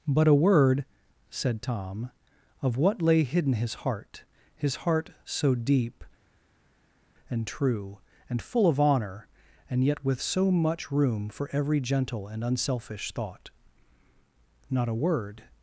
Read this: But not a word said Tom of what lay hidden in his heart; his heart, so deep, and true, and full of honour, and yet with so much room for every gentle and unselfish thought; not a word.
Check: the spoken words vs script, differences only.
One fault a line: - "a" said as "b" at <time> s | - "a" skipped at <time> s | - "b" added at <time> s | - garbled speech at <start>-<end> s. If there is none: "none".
- "not" skipped at 0.3 s
- "in" skipped at 3.5 s